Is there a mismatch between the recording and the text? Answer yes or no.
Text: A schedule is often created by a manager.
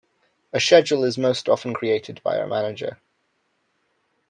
yes